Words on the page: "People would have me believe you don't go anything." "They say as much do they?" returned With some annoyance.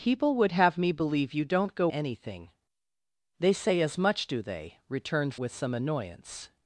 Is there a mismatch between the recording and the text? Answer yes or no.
no